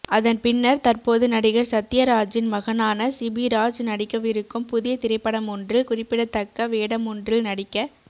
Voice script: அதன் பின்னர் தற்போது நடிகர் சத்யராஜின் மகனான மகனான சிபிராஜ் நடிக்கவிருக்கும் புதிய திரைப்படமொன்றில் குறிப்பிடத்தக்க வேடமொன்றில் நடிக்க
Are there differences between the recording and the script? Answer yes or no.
yes